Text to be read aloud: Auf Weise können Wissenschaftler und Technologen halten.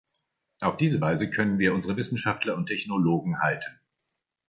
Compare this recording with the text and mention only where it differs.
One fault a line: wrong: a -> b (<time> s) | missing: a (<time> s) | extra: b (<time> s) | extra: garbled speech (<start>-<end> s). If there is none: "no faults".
extra: diese (0.8 s)
extra: wir unsere (1.6 s)